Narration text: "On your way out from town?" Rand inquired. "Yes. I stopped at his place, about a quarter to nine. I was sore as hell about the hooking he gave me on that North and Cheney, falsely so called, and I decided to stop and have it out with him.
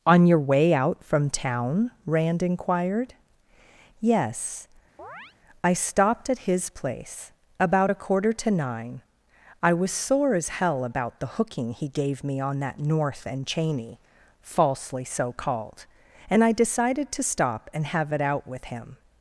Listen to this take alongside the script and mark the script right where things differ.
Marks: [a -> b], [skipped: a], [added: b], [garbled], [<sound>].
"On your way out from town?" Rand inquired. "Yes. [chirp] I stopped at his place, about a quarter to nine. I was sore as hell about the hooking he gave me on that North and Cheney, falsely so called, and I decided to stop and have it out with him.